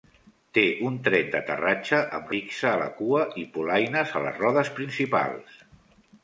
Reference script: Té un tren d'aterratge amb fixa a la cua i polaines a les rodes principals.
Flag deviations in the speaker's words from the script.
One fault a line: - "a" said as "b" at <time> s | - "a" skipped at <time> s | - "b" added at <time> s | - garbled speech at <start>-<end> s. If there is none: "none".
none